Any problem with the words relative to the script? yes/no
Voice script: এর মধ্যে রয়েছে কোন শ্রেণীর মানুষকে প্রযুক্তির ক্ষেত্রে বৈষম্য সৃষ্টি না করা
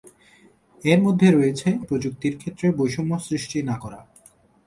yes